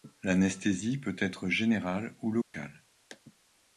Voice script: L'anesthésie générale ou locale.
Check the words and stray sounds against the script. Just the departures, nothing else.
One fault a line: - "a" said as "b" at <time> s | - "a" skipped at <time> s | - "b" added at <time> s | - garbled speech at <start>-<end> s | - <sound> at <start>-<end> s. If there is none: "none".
- "peut être" added at 1.0 s
- dropout at 2.4-2.5 s